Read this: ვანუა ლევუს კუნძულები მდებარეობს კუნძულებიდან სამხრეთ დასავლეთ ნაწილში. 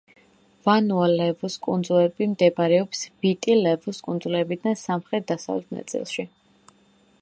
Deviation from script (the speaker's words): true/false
true